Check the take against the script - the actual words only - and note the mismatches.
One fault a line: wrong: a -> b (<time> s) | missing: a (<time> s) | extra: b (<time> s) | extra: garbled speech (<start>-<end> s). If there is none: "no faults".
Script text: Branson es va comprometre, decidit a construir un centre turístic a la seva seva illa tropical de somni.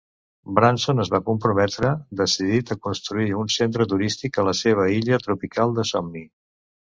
missing: seva (4.9 s)